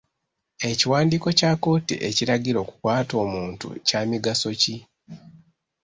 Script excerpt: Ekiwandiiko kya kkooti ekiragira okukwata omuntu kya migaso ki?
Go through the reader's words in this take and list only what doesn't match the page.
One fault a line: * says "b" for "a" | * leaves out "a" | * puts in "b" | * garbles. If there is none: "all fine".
all fine